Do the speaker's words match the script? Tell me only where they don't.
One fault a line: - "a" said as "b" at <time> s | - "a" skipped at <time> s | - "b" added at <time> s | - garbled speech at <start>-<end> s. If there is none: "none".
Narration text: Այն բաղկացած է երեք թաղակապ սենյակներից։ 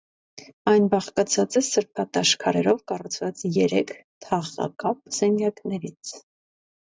- "սրբատաշ քարերով կառուցված" added at 1.7 s